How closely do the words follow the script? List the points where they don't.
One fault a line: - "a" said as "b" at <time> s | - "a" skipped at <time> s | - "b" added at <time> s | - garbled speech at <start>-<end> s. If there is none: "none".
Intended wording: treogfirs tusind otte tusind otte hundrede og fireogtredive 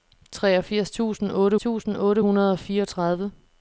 none